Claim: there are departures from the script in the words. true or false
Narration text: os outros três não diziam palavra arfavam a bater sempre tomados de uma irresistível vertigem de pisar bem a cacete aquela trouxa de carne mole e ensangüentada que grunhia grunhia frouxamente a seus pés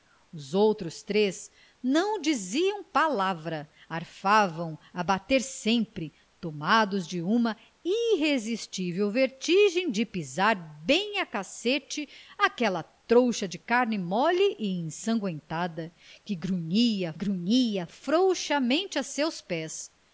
false